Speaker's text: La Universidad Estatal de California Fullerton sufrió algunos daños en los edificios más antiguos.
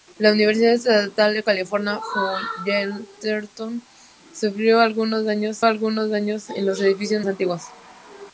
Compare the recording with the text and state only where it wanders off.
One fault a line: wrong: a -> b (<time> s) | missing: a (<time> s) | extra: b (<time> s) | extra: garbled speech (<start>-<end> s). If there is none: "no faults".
extra: algunos daños (5.6 s)
missing: más (7.2 s)